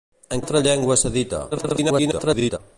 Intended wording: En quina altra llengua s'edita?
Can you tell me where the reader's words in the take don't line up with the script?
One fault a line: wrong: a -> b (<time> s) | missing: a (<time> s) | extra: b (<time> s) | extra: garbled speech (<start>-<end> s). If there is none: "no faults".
missing: quina (0.4 s)
extra: garbled speech (1.5-2.6 s)